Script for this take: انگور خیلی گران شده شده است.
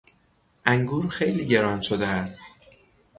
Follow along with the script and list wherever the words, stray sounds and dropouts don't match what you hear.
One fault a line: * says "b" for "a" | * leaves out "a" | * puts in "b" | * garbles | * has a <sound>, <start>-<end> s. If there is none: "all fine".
* leaves out "شده"